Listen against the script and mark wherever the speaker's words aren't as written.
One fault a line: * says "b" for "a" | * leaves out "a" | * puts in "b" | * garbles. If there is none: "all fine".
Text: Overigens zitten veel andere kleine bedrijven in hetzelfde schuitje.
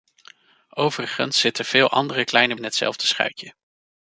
* leaves out "bedrijven"